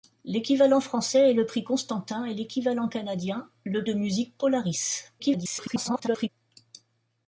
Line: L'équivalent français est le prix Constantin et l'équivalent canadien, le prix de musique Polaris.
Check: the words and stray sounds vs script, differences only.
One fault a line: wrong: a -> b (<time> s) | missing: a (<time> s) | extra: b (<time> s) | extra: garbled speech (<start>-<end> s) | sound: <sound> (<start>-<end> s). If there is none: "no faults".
missing: prix (3.9 s)
extra: garbled speech (5.2-6.3 s)